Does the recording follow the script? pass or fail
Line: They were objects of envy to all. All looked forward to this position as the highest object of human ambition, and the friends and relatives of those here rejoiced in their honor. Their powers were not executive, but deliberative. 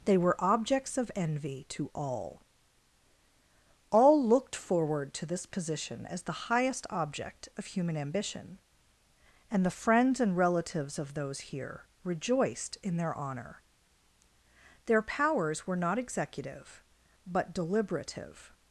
pass